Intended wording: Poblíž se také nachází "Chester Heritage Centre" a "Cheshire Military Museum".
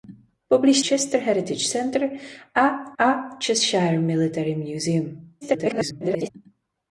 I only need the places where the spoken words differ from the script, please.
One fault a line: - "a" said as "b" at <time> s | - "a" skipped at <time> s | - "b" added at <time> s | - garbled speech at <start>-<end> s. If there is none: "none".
- "se také nachází" skipped at 0.8 s
- "a" added at 3.0 s
- garbled speech at 5.4-6.3 s